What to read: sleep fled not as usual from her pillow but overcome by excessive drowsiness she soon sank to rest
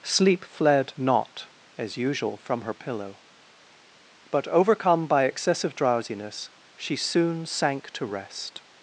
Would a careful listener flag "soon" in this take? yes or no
no